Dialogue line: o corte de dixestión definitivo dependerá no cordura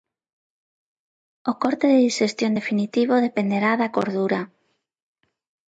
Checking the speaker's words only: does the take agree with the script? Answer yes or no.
no